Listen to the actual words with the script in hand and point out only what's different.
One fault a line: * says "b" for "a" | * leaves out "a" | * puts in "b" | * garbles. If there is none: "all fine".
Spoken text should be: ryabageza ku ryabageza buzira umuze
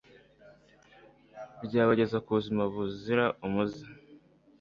* says "buzima" for "ryabageza"